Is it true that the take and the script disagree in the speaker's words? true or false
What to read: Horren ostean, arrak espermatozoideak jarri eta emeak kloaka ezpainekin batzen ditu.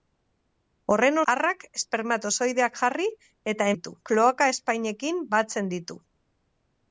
true